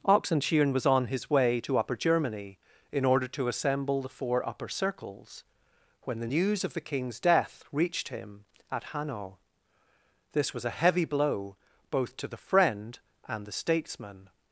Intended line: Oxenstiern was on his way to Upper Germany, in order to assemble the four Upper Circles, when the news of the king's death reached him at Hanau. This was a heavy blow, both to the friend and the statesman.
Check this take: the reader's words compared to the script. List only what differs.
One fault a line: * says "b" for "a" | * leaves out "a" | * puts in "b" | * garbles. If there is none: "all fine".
all fine